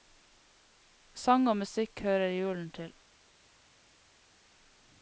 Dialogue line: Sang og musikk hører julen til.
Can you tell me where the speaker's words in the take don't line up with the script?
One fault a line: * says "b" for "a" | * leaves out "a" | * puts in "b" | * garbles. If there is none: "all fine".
all fine